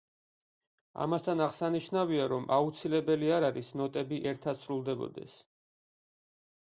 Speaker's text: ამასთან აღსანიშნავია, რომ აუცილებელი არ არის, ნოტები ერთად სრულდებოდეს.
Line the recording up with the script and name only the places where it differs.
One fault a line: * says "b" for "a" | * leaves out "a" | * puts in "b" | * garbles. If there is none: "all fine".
all fine